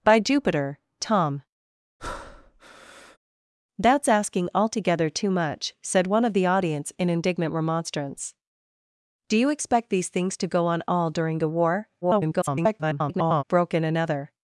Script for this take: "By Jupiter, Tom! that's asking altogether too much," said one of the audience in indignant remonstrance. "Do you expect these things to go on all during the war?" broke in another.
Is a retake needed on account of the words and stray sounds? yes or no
yes